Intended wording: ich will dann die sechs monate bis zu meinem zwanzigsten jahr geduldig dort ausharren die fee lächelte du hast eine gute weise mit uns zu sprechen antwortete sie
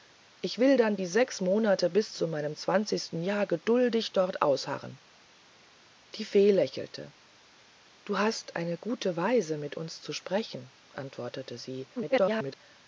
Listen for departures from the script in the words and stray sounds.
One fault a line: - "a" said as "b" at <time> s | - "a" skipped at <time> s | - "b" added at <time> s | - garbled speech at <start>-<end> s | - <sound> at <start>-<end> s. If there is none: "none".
- garbled speech at 12.0-12.6 s